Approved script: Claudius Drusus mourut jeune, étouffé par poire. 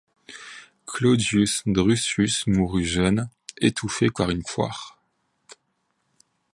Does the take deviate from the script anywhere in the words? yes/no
yes